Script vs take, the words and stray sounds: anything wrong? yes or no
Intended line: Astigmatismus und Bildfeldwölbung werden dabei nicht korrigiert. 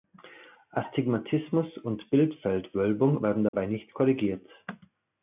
yes